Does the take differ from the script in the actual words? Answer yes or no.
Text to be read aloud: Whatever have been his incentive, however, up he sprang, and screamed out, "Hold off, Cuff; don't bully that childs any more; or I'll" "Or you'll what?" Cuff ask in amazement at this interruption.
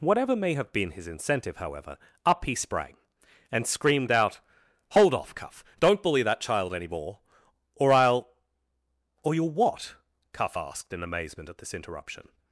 yes